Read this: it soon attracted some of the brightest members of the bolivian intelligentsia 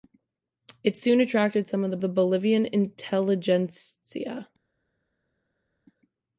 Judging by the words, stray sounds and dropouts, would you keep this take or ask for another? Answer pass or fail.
fail